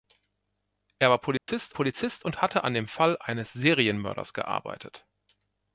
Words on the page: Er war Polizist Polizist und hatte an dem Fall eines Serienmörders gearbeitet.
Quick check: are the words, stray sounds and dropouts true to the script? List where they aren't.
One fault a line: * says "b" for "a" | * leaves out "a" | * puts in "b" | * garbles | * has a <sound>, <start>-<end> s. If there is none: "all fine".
* has a dropout, 1.4-1.5 s